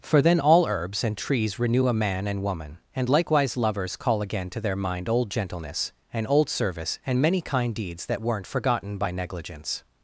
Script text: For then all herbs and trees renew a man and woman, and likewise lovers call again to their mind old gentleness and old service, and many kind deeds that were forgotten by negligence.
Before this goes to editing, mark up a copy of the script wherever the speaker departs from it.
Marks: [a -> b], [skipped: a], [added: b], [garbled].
For then all herbs and trees renew a man and woman, and likewise lovers call again to their mind old gentleness and old service, and many kind deeds that [were -> weren't] forgotten by negligence.